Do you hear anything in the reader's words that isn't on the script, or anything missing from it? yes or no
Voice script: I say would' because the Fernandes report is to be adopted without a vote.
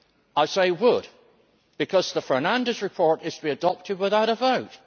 no